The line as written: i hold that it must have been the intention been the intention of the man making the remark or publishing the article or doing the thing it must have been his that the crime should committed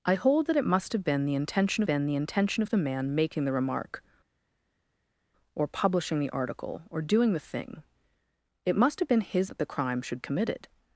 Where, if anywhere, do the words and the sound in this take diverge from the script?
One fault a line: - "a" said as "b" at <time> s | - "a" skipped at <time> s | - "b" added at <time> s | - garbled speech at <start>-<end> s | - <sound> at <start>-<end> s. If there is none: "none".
none